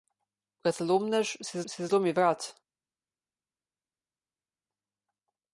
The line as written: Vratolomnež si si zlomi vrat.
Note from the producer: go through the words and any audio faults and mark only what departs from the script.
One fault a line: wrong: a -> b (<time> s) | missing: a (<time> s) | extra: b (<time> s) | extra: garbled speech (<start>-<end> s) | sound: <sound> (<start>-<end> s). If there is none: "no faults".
no faults